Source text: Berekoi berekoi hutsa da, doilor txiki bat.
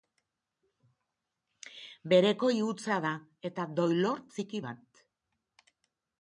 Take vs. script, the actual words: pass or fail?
fail